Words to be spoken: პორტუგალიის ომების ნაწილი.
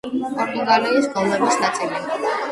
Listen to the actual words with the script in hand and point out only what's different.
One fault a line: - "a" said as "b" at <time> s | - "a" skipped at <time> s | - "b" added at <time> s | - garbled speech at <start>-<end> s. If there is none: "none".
none